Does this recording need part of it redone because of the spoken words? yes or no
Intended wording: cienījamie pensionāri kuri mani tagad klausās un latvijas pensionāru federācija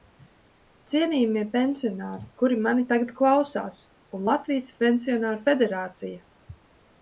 no